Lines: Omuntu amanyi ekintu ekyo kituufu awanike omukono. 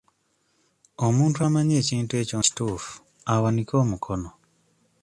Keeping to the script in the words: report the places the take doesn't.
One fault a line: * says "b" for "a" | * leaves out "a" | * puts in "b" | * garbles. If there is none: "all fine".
all fine